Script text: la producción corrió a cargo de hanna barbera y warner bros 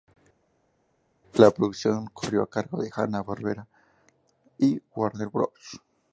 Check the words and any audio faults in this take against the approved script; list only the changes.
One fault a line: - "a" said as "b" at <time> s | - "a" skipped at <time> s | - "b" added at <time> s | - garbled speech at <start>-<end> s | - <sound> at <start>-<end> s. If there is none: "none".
none